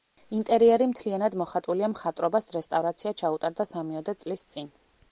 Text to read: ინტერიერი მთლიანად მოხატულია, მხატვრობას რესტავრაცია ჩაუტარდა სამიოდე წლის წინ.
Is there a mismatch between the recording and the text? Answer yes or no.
no